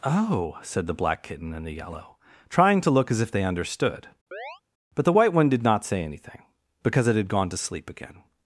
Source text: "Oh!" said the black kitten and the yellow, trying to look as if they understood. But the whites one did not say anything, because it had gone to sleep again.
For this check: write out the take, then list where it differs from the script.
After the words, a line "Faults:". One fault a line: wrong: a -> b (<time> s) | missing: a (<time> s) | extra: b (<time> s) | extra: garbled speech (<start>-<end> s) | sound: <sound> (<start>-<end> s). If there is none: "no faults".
"Oh!" said the black kitten and the yellow, trying to look as if they understood. But the white one did not say anything, because it had gone to sleep again.
Faults:
sound: chirp (4.3-4.6 s)
wrong: whites -> white (5.1 s)